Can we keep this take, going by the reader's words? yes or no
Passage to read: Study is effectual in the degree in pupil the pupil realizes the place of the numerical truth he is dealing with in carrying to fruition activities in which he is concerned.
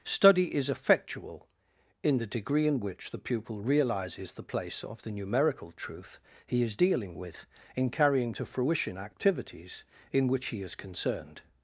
no